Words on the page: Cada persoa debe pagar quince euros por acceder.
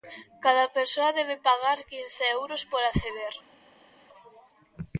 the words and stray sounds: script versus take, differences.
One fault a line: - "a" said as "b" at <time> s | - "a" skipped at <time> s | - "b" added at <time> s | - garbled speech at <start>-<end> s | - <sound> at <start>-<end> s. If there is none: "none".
none